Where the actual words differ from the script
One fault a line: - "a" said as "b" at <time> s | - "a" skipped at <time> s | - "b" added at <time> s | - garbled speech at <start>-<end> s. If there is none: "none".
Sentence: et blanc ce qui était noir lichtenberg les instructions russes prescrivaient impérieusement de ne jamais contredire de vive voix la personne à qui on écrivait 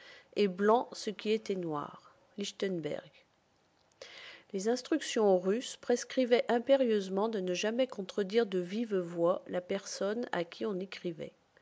none